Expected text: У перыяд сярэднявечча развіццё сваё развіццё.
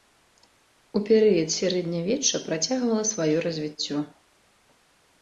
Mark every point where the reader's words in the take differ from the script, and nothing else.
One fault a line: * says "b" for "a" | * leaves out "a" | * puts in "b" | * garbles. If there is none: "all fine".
* says "працягвала" for "развіццё"